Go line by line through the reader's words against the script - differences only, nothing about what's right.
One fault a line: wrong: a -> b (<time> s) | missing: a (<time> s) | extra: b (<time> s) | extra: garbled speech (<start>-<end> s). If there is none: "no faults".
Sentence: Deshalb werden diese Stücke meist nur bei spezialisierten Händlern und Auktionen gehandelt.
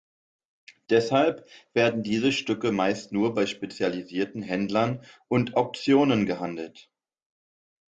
no faults